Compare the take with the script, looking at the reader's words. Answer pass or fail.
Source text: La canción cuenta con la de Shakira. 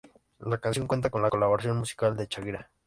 fail